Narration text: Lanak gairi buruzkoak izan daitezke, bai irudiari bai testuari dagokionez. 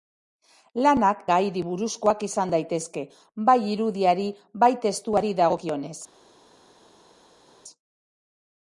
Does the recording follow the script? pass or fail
pass